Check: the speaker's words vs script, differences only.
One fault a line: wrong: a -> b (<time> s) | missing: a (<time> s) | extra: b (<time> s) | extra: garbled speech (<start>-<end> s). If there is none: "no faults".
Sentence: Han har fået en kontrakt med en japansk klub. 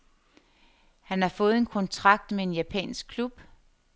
no faults